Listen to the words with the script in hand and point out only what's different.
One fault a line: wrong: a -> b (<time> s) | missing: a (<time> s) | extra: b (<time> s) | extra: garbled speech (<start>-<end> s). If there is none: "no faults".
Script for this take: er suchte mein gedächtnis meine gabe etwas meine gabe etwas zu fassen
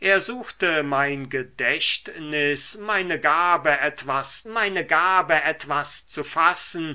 no faults